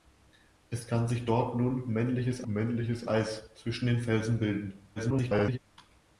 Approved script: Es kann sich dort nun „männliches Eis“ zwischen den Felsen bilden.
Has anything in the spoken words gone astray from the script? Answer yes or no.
yes